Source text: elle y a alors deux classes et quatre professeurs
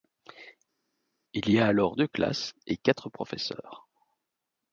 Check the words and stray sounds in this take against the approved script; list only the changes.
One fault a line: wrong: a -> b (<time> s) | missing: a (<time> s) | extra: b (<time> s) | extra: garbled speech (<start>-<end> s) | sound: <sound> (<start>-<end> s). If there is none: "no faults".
wrong: elle -> il (1.3 s)